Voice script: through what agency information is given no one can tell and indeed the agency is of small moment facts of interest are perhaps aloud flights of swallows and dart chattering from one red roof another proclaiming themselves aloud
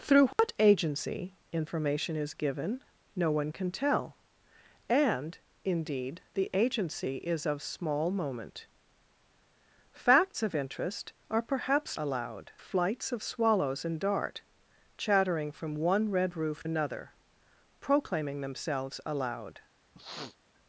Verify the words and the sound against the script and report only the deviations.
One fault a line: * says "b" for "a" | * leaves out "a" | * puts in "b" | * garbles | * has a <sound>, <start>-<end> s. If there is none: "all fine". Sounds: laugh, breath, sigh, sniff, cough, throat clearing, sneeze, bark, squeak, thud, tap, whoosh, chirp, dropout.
* has a dropout, 0.3-0.4 s
* has a sniff, 19.9-20.4 s